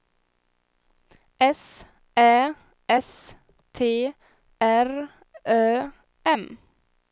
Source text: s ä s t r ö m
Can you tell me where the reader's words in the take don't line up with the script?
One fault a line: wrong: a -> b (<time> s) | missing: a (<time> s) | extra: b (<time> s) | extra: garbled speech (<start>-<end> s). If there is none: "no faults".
no faults